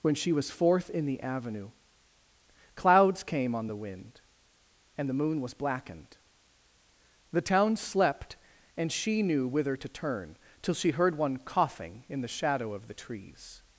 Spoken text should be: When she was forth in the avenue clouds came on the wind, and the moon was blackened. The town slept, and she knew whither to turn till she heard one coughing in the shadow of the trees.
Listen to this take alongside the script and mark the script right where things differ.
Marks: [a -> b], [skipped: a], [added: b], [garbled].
When she was forth in the avenue clouds came on the wind, and the moon was blackened. The town slept, and she knew whither to turn till she heard one coughing in the shadow of the trees.